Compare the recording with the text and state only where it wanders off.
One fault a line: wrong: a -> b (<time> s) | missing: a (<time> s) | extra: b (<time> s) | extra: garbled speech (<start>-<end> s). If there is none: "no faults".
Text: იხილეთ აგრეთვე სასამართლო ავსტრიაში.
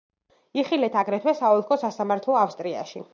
extra: საოლქო (1.4 s)